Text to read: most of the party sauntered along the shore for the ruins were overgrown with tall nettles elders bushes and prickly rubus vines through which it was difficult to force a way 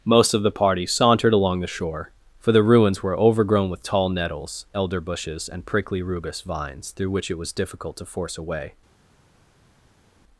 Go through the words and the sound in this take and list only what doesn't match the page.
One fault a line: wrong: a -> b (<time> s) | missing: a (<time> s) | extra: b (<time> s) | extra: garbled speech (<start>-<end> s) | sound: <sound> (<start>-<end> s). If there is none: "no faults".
wrong: elders -> elder (4.7 s)